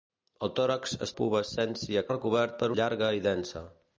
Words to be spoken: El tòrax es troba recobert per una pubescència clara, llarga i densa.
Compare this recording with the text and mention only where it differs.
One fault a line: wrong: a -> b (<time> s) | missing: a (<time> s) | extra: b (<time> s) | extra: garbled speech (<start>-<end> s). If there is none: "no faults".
wrong: troba -> pubescència (1.2 s)
missing: una pubescència clara (2.7 s)